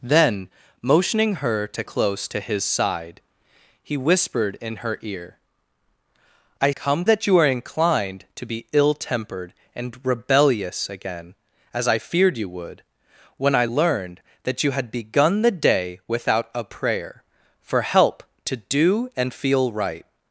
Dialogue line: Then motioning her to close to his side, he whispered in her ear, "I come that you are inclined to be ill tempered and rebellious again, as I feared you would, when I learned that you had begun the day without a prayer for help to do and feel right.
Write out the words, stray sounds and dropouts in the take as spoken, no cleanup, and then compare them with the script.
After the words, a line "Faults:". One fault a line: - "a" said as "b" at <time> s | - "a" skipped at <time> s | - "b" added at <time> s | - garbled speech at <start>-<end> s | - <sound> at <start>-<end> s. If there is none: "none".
Then motioning her to close to his side, he whispered in her ear, "I come that you are inclined to be ill tempered and rebellious again, as I feared you would, when I learned that you had begun the day without a prayer for help to do and feel right.
Faults:
none